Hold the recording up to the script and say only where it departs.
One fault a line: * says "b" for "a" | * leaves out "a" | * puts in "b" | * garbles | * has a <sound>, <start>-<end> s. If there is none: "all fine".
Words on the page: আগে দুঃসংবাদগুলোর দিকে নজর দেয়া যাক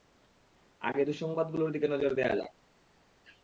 all fine